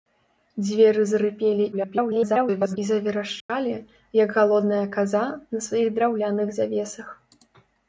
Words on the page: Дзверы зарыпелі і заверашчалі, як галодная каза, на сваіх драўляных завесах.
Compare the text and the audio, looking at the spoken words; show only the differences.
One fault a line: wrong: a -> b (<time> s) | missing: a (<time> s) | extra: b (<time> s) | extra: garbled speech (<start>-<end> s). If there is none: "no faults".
extra: garbled speech (1.7-2.8 s)